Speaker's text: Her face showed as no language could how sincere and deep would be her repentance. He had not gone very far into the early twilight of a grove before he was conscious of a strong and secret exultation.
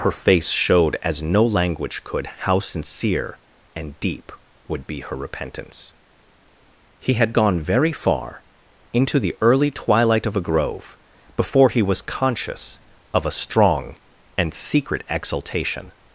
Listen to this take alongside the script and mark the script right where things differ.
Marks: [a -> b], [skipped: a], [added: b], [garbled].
Her face showed as no language could how sincere and deep would be her repentance. He had [skipped: not] gone very far into the early twilight of a grove before he was conscious of a strong and secret exultation.